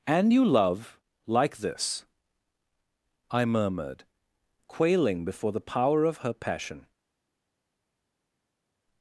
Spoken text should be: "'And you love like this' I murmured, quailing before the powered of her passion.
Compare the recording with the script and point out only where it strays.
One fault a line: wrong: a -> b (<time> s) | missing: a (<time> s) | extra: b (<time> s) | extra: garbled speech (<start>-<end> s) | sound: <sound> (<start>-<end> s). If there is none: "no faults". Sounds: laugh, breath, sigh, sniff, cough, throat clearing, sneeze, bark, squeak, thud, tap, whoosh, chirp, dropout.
wrong: powered -> power (5.7 s)